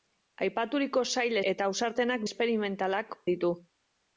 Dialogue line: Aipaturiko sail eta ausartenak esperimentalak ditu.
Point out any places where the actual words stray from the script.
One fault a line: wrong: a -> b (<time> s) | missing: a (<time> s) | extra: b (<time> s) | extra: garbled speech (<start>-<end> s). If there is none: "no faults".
no faults